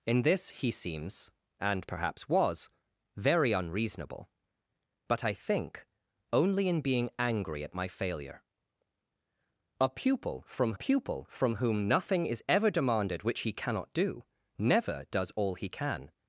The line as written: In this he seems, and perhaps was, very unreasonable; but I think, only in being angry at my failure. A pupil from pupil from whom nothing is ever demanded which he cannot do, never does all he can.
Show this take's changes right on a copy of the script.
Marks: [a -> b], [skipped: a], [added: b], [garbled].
In this he seems, and perhaps was, very unreasonable; but I think, only in being angry at my failure. A pupil from pupil from whom nothing is ever demanded which he cannot do, never does all he can.